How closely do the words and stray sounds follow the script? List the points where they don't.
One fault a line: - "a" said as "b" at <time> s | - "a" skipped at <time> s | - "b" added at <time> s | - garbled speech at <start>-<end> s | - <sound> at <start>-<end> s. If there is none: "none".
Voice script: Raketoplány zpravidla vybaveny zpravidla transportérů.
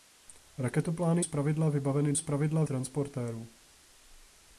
none